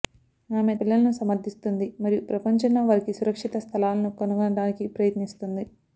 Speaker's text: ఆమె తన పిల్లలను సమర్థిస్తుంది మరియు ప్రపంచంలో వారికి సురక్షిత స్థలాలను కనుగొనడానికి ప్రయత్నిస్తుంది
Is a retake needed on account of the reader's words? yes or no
yes